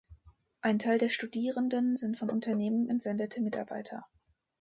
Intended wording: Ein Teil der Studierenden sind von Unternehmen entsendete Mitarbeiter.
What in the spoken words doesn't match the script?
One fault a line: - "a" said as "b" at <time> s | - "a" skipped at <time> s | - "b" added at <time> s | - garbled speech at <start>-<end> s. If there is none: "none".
none